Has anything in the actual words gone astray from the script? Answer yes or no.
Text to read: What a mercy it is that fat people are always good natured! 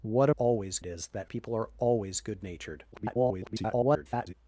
yes